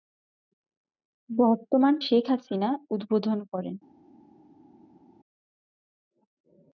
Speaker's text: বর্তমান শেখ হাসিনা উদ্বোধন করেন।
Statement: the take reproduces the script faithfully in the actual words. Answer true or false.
true